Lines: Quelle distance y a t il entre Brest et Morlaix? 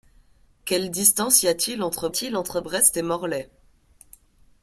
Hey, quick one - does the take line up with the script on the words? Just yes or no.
no